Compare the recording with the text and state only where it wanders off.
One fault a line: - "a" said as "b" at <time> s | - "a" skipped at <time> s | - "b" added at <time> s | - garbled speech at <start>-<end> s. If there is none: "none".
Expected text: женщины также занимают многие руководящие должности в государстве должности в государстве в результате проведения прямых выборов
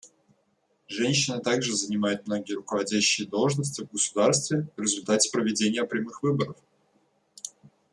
- "должности в государстве" skipped at 4.7 s